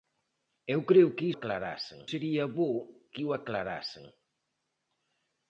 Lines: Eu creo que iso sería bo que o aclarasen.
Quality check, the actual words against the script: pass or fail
fail